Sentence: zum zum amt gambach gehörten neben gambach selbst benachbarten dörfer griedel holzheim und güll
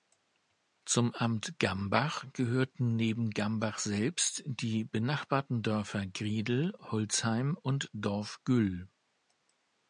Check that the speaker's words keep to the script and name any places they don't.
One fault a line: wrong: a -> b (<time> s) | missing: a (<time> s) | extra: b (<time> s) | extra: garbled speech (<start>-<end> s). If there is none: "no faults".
missing: zum (1.1 s)
extra: die (4.5 s)
extra: dorf (7.9 s)